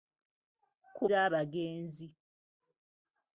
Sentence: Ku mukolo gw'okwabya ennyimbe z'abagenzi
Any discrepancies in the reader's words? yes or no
yes